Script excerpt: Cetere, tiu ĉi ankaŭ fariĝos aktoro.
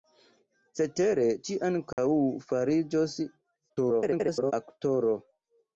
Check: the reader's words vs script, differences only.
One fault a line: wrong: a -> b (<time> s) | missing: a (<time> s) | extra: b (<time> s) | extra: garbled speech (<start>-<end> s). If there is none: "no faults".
missing: tiu (1.2 s)
extra: garbled speech (3.7-4.5 s)